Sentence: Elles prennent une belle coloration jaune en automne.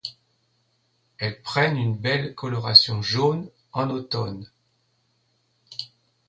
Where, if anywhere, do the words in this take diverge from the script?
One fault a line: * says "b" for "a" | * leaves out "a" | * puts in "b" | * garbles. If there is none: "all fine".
all fine